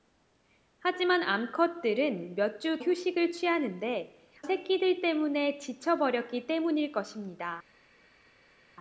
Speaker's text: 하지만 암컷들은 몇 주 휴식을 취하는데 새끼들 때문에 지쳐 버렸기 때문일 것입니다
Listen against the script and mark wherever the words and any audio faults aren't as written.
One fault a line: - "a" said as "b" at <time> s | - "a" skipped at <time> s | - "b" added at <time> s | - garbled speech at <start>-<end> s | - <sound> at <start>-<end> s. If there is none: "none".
none